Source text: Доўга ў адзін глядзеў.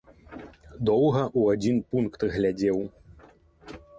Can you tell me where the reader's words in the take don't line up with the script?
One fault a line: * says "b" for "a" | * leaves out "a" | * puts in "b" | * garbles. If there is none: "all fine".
* puts in "пункт"